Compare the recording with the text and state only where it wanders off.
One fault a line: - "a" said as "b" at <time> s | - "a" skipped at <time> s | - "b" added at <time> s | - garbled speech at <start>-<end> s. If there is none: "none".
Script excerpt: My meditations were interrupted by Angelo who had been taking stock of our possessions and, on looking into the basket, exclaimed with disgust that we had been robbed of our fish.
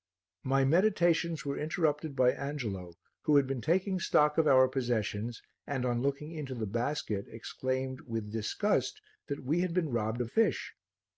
- "our" skipped at 10.3 s